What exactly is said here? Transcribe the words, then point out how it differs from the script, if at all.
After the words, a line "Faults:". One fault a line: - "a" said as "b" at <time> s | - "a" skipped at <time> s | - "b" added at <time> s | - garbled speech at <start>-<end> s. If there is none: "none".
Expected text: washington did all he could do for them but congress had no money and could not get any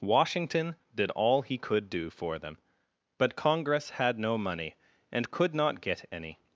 washington did all he could do for them but congress had no money and could not get any
Faults:
none